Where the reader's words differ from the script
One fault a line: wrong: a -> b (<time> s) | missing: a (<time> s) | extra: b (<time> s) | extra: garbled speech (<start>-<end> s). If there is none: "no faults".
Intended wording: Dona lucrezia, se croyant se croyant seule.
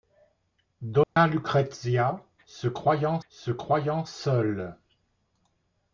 no faults